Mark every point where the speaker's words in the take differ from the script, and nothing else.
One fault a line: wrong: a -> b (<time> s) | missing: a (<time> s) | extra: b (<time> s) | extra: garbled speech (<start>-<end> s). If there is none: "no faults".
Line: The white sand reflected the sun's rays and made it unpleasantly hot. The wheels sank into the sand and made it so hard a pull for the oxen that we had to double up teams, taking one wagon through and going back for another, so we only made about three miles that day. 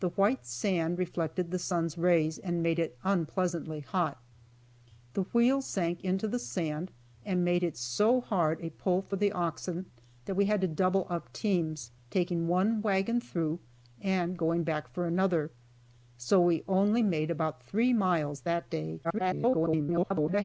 extra: garbled speech (19.0-20.4 s)